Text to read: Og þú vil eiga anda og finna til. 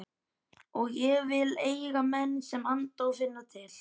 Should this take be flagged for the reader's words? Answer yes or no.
yes